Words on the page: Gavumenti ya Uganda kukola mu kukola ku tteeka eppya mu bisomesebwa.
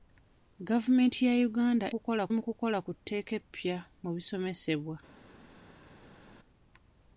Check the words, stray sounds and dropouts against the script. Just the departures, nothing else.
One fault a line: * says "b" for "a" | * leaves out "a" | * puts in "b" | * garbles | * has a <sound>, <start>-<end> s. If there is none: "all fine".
all fine